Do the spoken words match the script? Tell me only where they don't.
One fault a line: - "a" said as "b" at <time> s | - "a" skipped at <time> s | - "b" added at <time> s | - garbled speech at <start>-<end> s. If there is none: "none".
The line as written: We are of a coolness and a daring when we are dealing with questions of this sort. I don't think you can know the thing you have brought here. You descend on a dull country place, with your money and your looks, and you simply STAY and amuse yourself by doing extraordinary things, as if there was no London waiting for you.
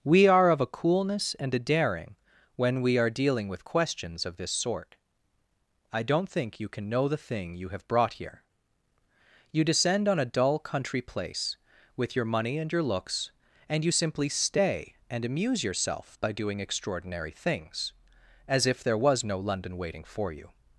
none